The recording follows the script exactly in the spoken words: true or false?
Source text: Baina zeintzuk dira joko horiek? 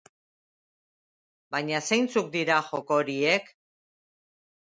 true